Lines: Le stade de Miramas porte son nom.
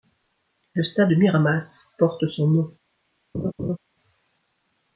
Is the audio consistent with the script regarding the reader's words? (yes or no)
yes